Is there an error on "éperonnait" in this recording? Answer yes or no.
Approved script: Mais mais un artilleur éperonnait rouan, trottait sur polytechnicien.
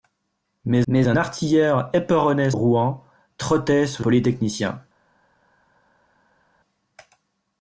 no